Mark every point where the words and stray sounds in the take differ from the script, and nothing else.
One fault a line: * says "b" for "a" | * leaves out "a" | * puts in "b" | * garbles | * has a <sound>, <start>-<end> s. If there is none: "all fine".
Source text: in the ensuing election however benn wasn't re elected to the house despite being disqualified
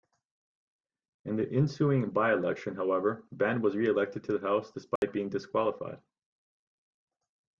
* puts in "by"
* says "was" for "wasn't"
* has a dropout, 5.0-5.0 s